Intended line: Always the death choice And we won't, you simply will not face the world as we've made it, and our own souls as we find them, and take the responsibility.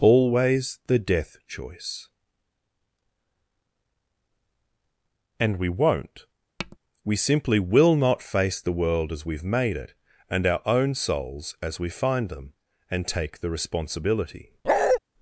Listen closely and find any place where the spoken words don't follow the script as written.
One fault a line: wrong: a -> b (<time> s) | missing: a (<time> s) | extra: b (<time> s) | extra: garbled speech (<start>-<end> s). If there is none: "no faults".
wrong: you -> we (7.0 s)